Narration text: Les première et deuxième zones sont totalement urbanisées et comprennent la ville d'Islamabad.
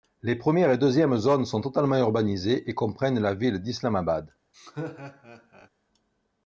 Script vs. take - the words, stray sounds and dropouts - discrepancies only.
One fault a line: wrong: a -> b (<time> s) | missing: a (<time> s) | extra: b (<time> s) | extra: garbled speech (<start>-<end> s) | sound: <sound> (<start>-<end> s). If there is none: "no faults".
sound: laugh (4.5-5.7 s)